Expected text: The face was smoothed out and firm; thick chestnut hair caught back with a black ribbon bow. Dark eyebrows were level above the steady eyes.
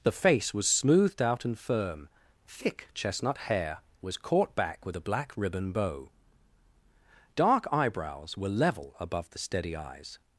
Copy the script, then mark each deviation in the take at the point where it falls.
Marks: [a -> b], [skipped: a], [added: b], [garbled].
The face was smoothed out and firm; thick chestnut hair [added: was] caught back with a black ribbon bow. Dark eyebrows were level above the steady eyes.